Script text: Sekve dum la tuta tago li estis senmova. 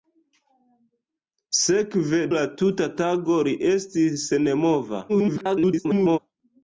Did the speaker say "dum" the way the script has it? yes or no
no